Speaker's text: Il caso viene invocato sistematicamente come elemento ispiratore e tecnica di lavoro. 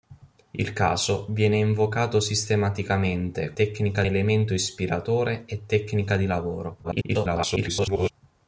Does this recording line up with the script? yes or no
no